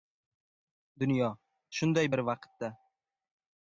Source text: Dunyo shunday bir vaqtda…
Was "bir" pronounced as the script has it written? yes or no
yes